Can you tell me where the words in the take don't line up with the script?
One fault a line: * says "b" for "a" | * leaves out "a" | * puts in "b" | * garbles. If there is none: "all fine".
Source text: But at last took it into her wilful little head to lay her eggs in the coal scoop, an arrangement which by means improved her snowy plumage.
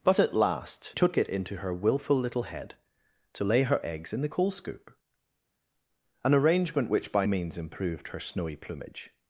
all fine